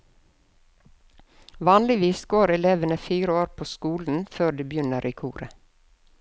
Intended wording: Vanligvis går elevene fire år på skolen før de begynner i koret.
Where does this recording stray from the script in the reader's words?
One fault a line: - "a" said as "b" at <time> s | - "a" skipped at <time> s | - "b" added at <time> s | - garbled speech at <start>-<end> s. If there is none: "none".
none